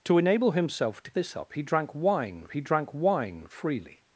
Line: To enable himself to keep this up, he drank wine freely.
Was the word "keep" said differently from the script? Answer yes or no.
yes